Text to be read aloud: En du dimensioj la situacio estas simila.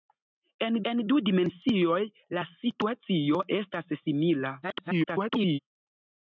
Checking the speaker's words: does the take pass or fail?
fail